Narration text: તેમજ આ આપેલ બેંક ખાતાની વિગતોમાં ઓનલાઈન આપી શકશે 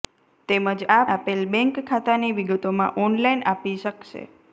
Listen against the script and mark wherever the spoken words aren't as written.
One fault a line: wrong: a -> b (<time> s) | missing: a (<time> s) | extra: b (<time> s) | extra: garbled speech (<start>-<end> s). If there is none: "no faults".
no faults